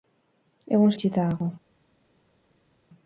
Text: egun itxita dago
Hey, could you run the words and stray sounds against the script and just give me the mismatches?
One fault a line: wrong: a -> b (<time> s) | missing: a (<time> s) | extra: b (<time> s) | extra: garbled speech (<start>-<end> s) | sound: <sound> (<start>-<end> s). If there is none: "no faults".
no faults